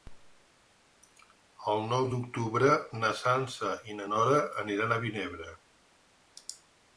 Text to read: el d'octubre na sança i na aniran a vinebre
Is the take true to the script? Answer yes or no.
no